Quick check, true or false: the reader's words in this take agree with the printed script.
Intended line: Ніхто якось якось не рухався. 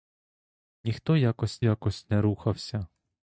true